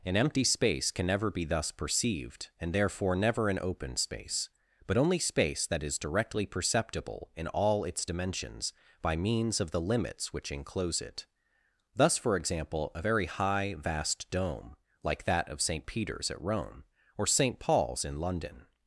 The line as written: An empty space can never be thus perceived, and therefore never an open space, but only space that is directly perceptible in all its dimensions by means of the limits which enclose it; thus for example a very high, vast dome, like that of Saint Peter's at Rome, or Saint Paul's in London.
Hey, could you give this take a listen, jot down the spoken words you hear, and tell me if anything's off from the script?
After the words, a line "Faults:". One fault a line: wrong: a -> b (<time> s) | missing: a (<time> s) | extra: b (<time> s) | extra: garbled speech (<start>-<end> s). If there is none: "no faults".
An empty space can never be thus perceived, and therefore never an open space, but only space that is directly perceptible in all its dimensions by means of the limits which enclose it; thus for example a very high, vast dome, like that of Saint Peter's at Rome, or Saint Paul's in London.
Faults:
no faults